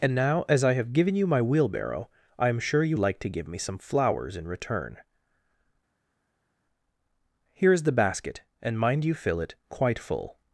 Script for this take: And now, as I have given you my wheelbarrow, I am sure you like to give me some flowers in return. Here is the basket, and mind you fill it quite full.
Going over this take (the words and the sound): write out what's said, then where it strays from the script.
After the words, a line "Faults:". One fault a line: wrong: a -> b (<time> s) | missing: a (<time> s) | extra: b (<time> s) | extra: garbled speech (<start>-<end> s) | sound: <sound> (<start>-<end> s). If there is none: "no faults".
And now, as I have given you my wheelbarrow, I am sure you like to give me some flowers in return. Here is the basket, and mind you fill it quite full.
Faults:
no faults